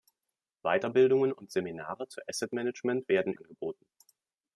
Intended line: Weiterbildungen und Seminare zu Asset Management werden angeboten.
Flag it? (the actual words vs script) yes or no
no